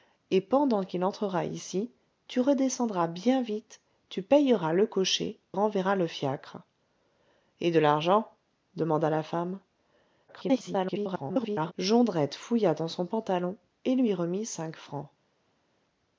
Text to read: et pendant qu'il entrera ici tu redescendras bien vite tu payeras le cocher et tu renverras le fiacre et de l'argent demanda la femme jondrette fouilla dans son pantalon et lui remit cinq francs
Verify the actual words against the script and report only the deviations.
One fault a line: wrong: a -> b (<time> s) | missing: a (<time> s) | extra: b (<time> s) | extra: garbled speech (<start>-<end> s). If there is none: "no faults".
missing: et tu (5.4 s)
extra: garbled speech (10.3-11.7 s)